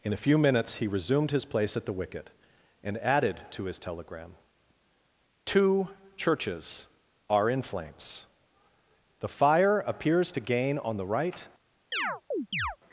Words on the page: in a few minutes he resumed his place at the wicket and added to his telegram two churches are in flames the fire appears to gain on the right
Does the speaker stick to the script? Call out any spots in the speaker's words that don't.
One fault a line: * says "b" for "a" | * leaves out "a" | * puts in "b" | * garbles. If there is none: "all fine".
all fine